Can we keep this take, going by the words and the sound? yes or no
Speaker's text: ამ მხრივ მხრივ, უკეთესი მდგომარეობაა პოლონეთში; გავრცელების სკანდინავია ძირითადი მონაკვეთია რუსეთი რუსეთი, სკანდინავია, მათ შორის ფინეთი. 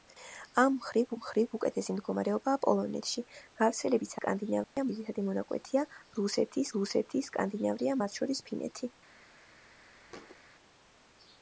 no